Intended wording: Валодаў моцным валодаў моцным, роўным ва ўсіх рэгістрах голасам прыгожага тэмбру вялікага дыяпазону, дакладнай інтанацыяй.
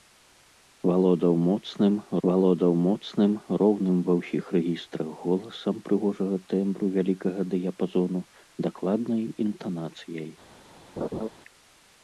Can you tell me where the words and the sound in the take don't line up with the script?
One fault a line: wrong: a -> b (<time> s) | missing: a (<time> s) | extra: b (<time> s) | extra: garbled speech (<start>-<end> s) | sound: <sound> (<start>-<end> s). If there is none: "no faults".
sound: laugh (11.0-11.3 s)